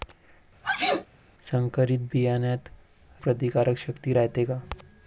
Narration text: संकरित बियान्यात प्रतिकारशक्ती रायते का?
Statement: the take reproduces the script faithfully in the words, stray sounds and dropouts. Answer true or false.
false